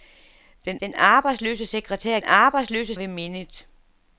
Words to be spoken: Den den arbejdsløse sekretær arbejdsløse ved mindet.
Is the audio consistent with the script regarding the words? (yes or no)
yes